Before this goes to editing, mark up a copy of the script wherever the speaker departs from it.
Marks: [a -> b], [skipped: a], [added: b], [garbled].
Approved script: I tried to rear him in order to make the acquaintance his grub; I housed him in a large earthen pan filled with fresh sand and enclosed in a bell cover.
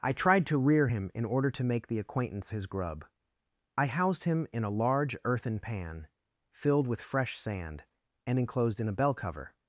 I tried to rear him in order to make the acquaintance his grub; I housed him in a large earthen pan filled with fresh sand and enclosed in a bell cover.